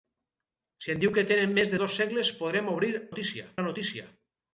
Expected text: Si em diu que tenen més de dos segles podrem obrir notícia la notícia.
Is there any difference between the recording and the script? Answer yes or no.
no